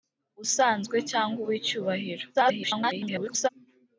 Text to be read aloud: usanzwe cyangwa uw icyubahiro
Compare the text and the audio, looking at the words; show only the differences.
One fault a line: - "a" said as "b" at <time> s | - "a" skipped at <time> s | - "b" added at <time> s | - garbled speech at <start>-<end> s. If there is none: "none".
- garbled speech at 2.3-3.5 s